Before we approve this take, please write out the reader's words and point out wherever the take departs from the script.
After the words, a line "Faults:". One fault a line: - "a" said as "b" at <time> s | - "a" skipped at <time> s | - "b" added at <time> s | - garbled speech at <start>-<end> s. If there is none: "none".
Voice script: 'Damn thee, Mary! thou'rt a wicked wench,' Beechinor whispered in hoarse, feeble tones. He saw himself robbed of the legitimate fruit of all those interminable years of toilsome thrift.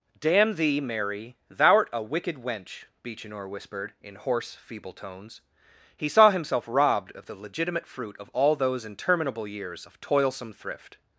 'Damn thee, Mary! thou'rt a wicked wench,' Beechinor whispered in hoarse, feeble tones. He saw himself robbed of the legitimate fruit of all those interminable years of toilsome thrift.
Faults:
none